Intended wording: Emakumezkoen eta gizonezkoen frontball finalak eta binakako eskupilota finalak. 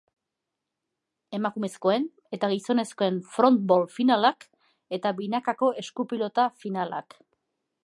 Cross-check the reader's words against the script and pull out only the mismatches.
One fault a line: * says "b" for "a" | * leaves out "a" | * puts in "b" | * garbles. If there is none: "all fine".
all fine